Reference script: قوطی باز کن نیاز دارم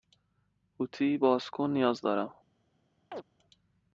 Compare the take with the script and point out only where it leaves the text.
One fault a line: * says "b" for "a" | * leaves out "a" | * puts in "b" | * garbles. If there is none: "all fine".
all fine